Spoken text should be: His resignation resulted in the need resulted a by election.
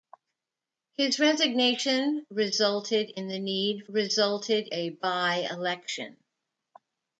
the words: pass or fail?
pass